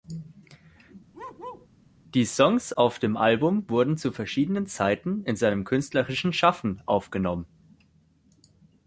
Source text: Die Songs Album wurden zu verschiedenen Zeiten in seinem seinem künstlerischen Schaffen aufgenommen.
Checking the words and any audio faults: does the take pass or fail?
fail